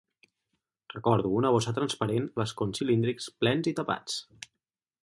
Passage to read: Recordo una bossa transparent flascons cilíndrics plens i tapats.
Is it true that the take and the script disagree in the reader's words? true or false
false